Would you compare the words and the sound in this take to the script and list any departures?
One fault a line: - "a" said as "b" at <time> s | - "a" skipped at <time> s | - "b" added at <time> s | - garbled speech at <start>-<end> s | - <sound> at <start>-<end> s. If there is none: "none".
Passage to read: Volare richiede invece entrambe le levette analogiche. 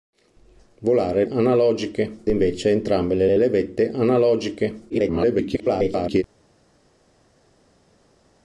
- "richiede" said as "analogiche" at 1.3 s
- "le" added at 3.2 s
- garbled speech at 4.9-6.2 s